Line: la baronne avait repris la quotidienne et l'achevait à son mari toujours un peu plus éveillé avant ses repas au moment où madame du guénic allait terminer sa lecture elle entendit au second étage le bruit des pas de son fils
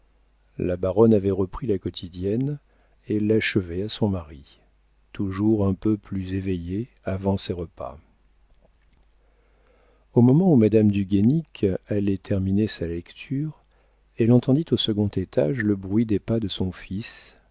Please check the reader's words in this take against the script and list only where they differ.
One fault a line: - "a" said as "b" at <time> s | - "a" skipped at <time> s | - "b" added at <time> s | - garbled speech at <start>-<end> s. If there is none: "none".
none